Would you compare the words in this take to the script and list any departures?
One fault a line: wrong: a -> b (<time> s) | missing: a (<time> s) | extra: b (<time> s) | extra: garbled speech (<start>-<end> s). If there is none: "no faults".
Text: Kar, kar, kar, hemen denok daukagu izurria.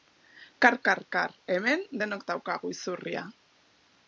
no faults